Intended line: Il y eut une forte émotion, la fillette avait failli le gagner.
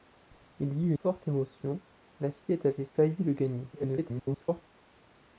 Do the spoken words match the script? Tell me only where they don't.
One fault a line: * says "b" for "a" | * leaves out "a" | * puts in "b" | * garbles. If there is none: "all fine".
* leaves out "une"
* garbles